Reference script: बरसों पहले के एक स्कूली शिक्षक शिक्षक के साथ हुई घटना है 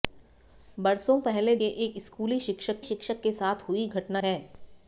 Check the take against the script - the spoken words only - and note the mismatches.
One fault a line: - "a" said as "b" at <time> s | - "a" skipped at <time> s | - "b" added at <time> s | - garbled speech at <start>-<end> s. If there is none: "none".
none